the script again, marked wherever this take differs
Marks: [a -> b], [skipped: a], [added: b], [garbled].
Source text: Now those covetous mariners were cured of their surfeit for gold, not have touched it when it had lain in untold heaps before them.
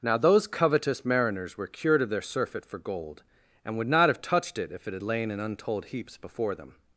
Now those covetous mariners were cured of their surfeit for gold, [added: and would] not have touched it [when -> if] it had lain in untold heaps before them.